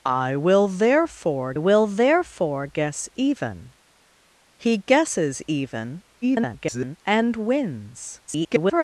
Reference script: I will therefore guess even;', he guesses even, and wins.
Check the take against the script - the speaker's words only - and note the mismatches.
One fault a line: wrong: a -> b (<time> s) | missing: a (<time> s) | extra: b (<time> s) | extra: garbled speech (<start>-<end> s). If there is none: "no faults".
extra: will therefore (1.6 s)
extra: garbled speech (6.2-7.0 s)
extra: garbled speech (8.3-8.8 s)